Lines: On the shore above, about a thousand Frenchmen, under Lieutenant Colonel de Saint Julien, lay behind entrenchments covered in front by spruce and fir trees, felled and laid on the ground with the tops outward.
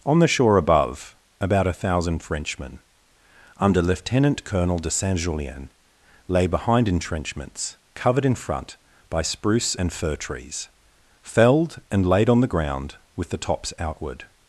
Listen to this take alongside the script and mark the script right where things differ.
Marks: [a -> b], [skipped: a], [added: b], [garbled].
On the shore above, about a thousand Frenchmen, under Lieutenant Colonel de Saint Julien, lay behind entrenchments covered in front by spruce and fir trees, felled and laid on the ground with the tops outward.